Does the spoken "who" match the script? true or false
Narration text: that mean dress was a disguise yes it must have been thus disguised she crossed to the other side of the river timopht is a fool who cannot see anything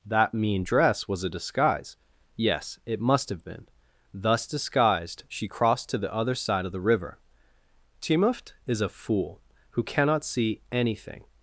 true